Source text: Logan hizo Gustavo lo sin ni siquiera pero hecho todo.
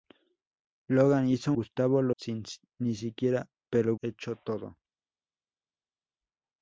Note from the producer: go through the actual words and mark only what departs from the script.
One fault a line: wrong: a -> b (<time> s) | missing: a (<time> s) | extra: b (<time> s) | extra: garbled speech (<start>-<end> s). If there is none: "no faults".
no faults